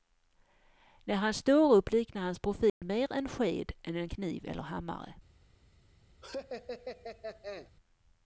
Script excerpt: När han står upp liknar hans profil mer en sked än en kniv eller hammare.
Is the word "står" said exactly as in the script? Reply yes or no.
yes